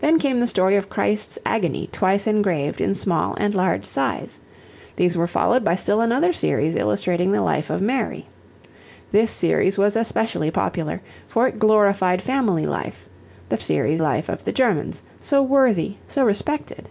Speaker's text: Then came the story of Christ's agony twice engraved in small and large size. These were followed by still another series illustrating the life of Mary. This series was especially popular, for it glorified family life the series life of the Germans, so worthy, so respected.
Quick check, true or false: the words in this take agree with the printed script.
true